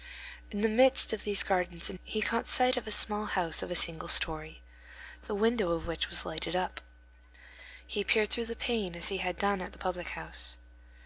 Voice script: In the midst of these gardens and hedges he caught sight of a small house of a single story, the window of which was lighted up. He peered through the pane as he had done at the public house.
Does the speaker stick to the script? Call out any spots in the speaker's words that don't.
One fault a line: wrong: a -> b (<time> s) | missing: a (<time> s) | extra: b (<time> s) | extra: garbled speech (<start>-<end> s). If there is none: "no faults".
missing: hedges (2.0 s)